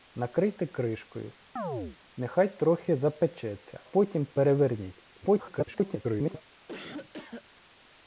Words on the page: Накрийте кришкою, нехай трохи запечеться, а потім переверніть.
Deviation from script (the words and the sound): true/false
true